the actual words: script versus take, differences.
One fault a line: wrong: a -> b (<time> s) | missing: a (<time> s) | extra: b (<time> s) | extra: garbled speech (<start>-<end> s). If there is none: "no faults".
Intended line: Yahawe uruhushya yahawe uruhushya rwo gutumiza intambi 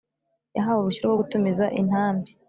missing: yahawe uruhushya (1.0 s)